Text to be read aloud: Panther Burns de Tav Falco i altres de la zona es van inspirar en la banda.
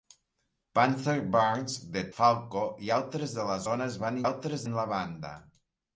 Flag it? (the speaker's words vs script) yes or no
yes